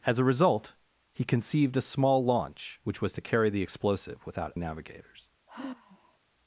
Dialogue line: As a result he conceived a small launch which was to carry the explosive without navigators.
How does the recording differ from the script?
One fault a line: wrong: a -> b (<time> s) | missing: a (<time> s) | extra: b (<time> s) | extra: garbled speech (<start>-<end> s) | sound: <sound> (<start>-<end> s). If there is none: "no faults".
sound: sigh (5.5-6.2 s)